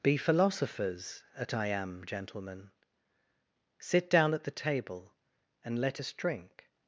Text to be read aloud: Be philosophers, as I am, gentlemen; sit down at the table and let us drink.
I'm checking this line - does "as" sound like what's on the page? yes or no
no